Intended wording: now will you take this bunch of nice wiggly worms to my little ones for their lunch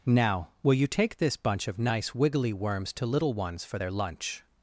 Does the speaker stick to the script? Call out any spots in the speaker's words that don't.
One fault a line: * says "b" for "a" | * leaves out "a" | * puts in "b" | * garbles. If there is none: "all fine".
* leaves out "my"